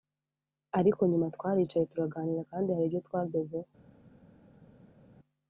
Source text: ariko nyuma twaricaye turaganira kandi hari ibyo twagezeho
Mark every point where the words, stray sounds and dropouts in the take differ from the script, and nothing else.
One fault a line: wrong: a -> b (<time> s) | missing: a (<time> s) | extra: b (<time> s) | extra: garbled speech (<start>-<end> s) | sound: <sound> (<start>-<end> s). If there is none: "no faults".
no faults